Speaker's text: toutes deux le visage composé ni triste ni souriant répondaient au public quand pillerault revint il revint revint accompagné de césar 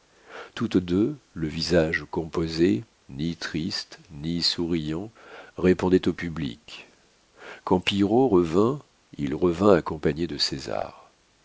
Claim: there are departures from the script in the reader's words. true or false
true